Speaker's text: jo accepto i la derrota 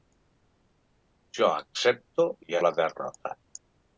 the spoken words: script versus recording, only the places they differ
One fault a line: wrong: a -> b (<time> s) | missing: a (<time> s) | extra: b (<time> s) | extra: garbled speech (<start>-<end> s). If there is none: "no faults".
no faults